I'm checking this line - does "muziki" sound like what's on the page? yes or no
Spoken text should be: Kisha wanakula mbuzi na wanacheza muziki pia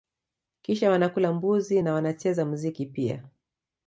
yes